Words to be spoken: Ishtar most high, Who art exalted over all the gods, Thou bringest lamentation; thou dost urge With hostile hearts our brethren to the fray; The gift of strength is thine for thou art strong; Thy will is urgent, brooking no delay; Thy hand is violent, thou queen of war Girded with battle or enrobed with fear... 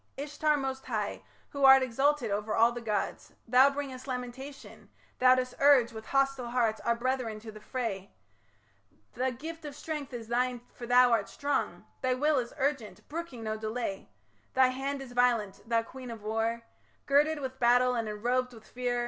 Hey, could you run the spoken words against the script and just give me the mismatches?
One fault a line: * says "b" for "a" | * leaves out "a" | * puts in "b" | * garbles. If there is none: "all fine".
* says "and" for "or"